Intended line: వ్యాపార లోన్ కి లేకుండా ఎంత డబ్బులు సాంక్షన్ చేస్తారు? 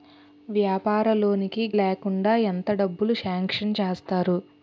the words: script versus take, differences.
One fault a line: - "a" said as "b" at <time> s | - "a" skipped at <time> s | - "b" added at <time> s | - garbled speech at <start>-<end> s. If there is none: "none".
none